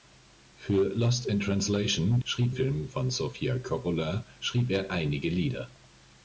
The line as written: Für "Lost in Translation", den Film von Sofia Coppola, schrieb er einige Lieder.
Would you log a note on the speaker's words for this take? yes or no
yes